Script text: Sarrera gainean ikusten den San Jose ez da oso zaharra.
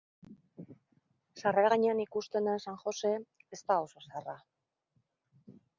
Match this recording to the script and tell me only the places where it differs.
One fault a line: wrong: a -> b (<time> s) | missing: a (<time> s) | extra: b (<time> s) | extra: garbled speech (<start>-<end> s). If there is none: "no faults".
no faults